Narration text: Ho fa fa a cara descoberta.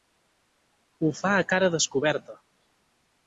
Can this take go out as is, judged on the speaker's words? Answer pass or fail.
fail